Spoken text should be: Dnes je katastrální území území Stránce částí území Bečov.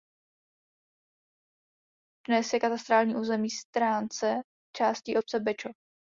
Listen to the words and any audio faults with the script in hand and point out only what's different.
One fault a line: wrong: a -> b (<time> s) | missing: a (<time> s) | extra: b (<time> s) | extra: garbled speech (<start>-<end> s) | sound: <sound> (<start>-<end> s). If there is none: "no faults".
missing: území (3.5 s)
wrong: území -> obce (5.2 s)